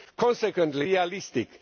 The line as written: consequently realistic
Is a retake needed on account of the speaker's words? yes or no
no